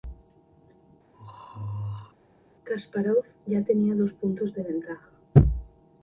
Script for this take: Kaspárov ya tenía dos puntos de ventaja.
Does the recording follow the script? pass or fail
pass